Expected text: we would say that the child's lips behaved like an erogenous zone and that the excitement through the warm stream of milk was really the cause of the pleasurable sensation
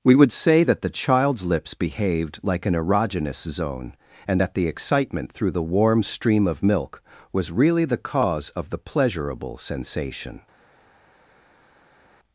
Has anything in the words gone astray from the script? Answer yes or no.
no